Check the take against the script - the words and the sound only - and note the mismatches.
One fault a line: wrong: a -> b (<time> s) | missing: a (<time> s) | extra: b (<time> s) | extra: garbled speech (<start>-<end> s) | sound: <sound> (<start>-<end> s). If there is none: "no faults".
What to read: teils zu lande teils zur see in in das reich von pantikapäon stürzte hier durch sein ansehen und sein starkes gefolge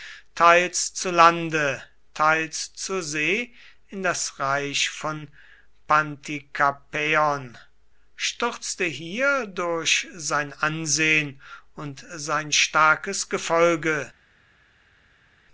missing: in (4.0 s)